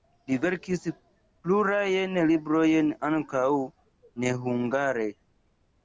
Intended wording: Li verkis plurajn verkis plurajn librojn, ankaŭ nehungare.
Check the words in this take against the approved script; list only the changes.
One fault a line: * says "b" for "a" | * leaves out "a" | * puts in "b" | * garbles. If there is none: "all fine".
* leaves out "verkis plurajn"